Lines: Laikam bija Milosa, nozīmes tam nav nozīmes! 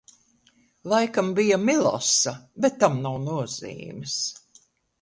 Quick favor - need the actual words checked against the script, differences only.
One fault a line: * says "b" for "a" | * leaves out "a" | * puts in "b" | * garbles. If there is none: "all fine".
* says "bet" for "nozīmes"